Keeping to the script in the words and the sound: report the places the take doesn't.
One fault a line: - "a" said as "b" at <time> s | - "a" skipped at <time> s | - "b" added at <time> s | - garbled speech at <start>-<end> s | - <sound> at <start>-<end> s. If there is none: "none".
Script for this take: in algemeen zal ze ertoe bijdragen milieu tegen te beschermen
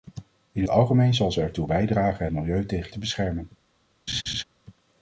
- laugh at 4.1-4.4 s